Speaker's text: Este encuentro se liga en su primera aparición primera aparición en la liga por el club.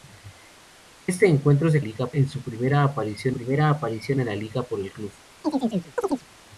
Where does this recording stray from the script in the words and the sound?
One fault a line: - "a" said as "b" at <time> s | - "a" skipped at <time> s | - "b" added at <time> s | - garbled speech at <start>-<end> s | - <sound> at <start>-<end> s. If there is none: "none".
- chirp at 5.4-6.3 s